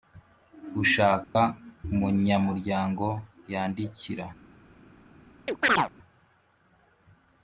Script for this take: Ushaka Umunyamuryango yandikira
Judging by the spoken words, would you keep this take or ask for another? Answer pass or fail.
pass